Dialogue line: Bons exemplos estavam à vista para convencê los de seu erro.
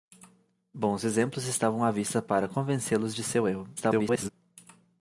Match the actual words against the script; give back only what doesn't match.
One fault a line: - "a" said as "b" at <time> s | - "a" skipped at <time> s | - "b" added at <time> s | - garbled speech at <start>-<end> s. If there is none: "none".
- garbled speech at 3.8-4.3 s